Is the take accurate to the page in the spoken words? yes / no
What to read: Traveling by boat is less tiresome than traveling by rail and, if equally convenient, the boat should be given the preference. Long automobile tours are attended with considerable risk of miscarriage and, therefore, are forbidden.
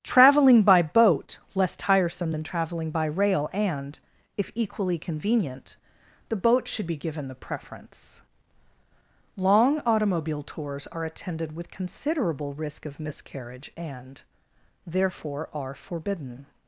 no